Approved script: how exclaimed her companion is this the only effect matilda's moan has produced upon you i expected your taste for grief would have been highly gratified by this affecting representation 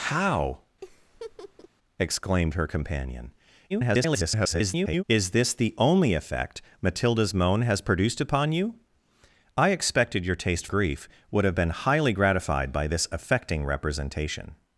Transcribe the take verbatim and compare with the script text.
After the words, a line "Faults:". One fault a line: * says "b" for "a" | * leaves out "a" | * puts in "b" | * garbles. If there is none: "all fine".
how exclaimed her companion [garbled] is this the only effect matilda's moan has produced upon you i expected your taste grief would have been highly gratified by this affecting representation
Faults:
* garbles
* leaves out "for"